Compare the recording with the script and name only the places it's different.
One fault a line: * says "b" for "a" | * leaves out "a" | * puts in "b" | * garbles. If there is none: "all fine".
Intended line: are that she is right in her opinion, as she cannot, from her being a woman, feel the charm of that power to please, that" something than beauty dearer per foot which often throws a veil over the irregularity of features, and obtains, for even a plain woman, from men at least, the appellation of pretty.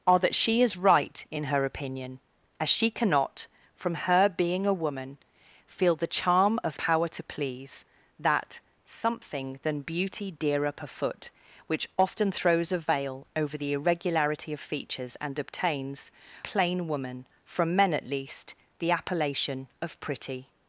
* leaves out "that"
* leaves out "for even a"